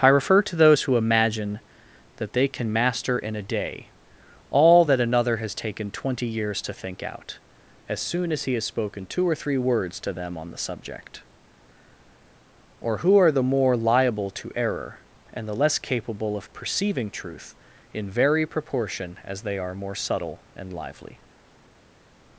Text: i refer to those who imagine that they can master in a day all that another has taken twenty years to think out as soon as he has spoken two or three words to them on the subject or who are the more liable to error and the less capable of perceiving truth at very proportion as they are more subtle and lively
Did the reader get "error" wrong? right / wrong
right